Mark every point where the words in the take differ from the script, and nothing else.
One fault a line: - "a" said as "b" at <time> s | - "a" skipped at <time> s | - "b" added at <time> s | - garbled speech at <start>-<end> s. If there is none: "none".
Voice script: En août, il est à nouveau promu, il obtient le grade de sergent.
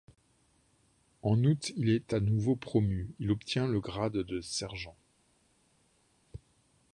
none